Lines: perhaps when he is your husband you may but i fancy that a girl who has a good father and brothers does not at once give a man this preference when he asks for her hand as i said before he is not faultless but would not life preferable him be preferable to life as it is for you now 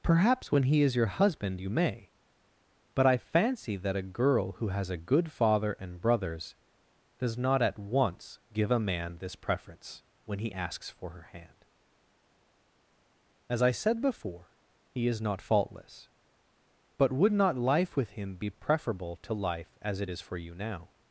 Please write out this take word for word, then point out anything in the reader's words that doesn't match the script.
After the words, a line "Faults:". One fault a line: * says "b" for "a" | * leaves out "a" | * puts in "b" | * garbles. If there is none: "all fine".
perhaps when he is your husband you may but i fancy that a girl who has a good father and brothers does not at once give a man this preference when he asks for her hand as i said before he is not faultless but would not life with him be preferable to life as it is for you now
Faults:
* says "with" for "preferable"